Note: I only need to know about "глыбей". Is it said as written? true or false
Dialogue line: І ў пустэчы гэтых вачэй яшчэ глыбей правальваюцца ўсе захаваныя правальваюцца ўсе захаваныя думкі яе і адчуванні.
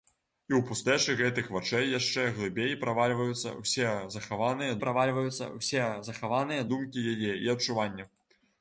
true